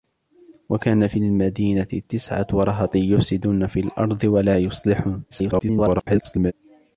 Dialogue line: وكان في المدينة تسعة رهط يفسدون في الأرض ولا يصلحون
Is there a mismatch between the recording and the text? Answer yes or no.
yes